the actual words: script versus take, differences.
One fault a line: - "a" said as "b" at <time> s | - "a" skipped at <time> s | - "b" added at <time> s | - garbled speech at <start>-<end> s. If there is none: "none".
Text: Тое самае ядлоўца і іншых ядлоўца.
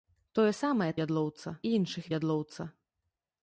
none